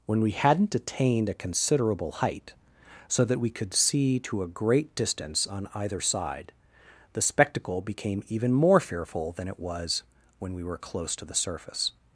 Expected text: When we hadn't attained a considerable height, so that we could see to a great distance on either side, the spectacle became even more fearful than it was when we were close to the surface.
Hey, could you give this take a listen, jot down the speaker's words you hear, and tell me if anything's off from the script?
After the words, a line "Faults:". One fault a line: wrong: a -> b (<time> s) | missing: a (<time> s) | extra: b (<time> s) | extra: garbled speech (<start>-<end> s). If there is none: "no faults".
When we hadn't attained a considerable height, so that we could see to a great distance on either side, the spectacle became even more fearful than it was when we were close to the surface.
Faults:
no faults